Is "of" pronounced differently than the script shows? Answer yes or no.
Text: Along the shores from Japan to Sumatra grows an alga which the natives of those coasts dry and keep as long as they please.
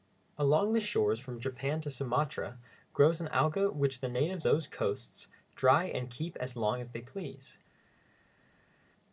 yes